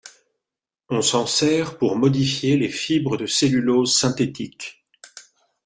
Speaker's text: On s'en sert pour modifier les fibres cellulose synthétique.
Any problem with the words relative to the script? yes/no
yes